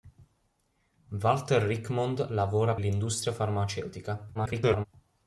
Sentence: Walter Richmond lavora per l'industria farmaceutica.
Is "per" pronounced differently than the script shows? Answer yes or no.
yes